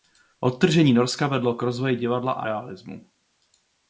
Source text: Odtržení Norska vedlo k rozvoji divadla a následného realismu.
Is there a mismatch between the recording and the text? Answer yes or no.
yes